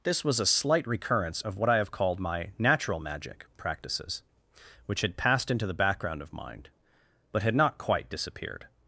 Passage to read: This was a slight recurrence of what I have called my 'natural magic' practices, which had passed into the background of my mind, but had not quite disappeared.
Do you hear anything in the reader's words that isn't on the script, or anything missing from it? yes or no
yes